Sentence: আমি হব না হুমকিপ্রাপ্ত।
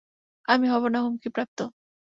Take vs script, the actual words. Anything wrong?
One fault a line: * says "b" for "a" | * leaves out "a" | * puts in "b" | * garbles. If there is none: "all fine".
all fine